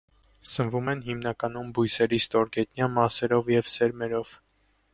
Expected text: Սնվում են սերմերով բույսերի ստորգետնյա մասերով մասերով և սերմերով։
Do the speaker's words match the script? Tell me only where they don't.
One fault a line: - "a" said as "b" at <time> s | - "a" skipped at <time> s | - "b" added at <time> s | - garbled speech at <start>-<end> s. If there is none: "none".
- "սերմերով" said as "հիմնականում" at 1.1 s
- "մասերով" skipped at 3.5 s